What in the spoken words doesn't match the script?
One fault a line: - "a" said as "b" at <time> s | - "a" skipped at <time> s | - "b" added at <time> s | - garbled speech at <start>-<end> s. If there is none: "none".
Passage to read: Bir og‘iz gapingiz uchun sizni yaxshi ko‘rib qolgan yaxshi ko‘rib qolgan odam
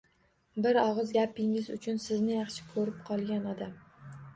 - "yaxshi ko‘rib qolgan" skipped at 3.5 s